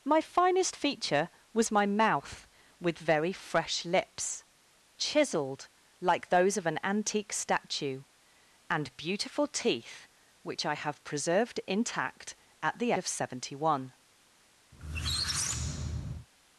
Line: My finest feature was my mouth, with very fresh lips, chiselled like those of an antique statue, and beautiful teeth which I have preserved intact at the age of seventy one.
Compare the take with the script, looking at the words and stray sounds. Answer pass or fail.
fail